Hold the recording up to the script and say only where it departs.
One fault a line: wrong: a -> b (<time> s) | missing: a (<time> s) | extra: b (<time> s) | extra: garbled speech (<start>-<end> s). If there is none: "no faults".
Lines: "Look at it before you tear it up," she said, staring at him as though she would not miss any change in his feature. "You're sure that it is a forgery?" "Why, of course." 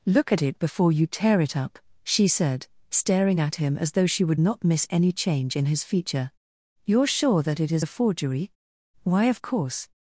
no faults